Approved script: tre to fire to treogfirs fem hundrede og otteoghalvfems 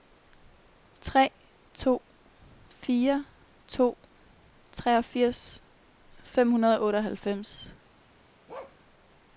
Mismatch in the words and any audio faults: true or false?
true